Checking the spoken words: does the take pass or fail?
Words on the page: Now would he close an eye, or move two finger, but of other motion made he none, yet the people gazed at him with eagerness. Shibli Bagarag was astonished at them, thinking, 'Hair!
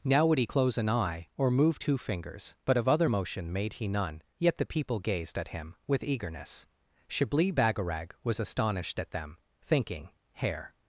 fail